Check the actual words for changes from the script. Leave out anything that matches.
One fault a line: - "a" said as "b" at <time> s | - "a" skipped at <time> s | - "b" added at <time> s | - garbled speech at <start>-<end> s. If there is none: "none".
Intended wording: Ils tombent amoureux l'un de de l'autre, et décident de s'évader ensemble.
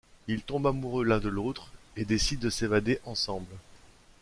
- "de" skipped at 1.3 s